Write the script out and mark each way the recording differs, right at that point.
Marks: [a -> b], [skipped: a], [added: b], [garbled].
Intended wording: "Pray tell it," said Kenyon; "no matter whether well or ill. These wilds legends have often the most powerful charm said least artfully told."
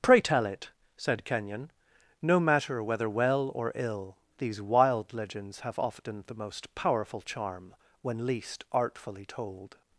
"Pray tell it," said Kenyon; "no matter whether well or ill. These [wilds -> wild] legends have often the most powerful charm [said -> when] least artfully told."